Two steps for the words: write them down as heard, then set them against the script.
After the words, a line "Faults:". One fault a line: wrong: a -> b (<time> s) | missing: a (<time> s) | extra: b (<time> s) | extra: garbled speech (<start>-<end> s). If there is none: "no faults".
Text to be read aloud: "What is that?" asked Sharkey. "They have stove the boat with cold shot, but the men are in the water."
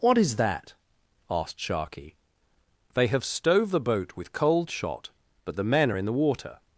"What is that?" asked Sharkey. "They have stove the boat with cold shot, but the men are in the water."
Faults:
no faults